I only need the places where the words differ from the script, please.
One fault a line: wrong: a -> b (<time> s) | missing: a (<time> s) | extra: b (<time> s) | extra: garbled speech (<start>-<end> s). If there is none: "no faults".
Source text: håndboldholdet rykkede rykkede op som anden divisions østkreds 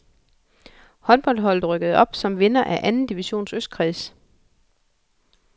missing: rykkede (2.0 s)
extra: vinder af (2.4 s)